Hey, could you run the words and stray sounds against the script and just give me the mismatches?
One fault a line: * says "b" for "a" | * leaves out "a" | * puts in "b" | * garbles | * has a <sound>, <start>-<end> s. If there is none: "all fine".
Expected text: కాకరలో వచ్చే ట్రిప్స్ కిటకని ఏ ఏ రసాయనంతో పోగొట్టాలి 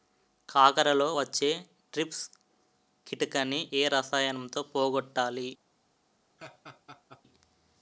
* leaves out "ఏ"
* has a laugh, 6.4-7.2 s